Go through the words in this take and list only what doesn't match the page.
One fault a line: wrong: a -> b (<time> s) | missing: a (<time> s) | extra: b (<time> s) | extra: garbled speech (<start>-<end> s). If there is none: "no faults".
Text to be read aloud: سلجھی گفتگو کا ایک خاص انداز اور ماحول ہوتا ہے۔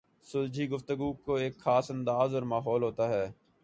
no faults